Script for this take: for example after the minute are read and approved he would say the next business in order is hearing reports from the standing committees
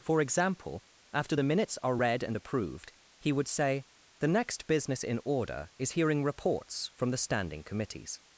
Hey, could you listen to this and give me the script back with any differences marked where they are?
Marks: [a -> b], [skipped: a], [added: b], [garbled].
for example after the [minute -> minutes] are read and approved he would say the next business in order is hearing reports from the standing committees